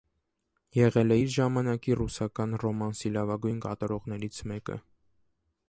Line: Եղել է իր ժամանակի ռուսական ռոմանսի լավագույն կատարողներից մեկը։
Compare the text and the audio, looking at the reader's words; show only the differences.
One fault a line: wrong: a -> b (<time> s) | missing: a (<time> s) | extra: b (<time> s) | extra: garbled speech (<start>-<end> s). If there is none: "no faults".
no faults